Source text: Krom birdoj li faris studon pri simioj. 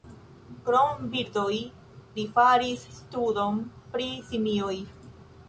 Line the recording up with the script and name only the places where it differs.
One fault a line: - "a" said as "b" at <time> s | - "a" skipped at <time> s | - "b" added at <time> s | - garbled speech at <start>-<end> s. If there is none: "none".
none